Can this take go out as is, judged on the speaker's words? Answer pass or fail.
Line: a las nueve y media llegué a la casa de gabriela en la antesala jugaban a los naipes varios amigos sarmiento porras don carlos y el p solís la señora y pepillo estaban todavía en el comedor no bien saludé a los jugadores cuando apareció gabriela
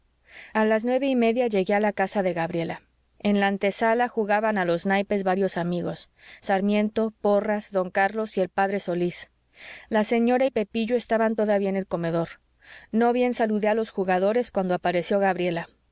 pass